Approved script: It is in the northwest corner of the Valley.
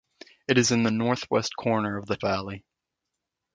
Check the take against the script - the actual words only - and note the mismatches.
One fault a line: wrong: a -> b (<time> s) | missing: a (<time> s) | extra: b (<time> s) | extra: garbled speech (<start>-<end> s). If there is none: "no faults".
no faults